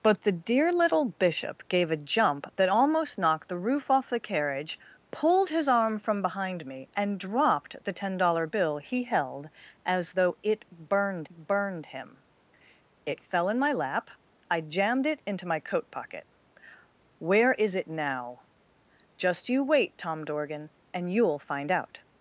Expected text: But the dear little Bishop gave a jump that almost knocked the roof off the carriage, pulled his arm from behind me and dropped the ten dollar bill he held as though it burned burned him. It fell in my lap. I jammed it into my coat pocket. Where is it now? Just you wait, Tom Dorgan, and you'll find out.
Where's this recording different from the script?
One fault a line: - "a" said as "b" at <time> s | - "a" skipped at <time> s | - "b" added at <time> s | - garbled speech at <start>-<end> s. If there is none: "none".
none